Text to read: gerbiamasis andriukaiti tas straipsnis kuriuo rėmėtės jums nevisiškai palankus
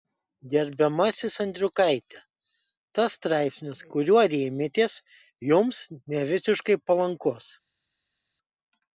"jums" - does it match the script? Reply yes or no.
yes